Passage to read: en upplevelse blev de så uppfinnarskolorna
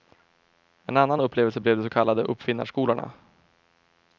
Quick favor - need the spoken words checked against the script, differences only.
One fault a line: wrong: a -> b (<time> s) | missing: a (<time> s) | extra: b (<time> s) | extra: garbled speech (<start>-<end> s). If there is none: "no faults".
extra: annan (1.0 s)
extra: kallade (1.9 s)